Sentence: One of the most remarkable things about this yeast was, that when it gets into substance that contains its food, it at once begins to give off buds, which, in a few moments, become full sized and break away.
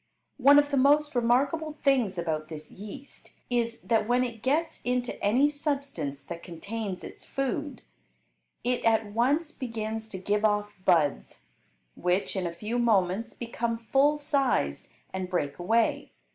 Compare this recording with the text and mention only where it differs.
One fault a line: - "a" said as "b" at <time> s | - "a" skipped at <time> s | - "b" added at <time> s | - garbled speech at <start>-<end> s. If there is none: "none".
- "was" said as "is" at 3.5 s
- "any" added at 5.2 s